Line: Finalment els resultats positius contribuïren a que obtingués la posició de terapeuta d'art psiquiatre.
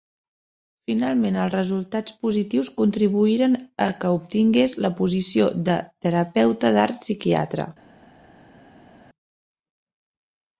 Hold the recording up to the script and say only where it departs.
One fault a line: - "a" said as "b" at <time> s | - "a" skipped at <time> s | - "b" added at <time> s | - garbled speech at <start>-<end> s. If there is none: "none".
none